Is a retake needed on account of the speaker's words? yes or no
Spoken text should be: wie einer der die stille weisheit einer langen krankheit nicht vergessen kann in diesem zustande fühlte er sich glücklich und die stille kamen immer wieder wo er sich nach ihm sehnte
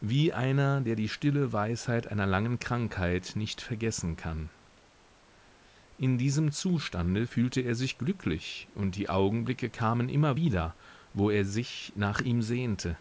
yes